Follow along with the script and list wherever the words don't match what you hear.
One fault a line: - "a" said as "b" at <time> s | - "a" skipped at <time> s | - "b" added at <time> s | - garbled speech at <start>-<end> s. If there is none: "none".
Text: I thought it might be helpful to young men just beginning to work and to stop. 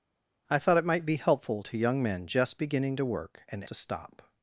none